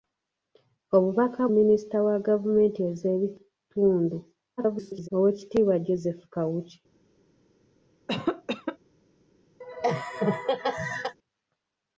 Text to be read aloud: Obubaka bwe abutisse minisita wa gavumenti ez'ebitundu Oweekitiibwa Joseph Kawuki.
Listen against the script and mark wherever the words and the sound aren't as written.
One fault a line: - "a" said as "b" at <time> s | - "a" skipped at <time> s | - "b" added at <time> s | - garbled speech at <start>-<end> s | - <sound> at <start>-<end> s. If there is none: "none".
- "bwe abutisse" skipped at 1.4 s
- garbled speech at 4.6-5.1 s
- cough at 8.1-8.8 s
- laugh at 9.6-11.2 s